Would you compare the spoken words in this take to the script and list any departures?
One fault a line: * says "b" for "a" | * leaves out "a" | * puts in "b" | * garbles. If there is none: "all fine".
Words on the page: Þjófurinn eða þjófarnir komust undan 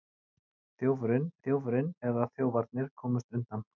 * puts in "þjófurinn"